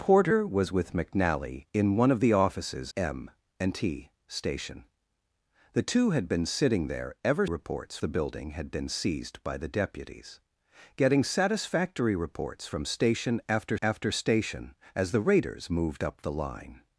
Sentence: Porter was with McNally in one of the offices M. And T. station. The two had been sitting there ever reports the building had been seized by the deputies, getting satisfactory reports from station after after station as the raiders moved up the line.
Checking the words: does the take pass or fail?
pass